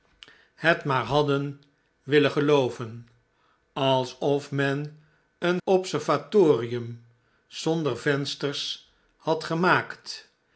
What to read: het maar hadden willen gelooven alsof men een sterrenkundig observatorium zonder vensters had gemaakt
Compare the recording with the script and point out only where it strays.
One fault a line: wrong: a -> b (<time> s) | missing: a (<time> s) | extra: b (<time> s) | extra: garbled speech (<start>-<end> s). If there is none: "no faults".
missing: sterrenkundig (5.6 s)